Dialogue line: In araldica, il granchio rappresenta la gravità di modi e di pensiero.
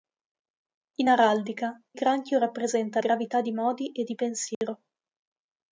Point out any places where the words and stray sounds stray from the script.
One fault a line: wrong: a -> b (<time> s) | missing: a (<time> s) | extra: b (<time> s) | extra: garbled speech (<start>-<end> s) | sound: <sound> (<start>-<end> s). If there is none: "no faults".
missing: il (1.8 s)
missing: la (3.0 s)
sound: dropout (4.5-4.6 s)